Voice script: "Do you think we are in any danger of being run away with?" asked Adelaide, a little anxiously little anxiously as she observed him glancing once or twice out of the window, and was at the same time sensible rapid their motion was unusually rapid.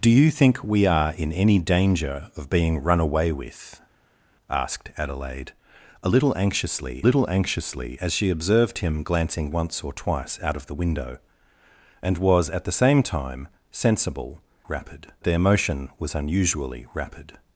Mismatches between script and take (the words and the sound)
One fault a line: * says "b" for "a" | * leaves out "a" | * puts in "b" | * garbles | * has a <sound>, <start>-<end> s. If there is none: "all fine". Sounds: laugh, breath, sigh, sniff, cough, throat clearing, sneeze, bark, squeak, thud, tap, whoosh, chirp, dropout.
all fine